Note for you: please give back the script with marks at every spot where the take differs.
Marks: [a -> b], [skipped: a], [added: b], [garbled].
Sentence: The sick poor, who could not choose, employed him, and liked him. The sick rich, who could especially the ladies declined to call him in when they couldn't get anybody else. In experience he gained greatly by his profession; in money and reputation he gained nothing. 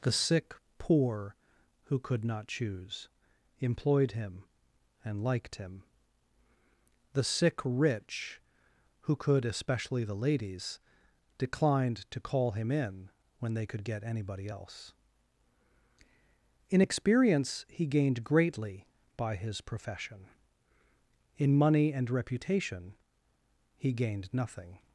The sick poor, who could not choose, employed him, and liked him. The sick rich, who could especially the ladies declined to call him in when they [couldn't -> could] get anybody else. In experience he gained greatly by his profession; in money and reputation he gained nothing.